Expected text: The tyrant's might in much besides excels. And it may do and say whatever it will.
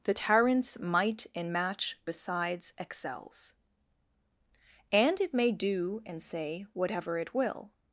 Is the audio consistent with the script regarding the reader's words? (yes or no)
no